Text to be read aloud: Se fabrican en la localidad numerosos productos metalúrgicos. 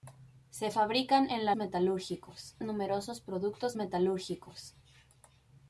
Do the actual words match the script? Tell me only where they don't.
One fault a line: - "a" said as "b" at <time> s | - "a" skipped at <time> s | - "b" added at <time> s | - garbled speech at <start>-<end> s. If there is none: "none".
- "localidad" said as "metalúrgicos" at 1.6 s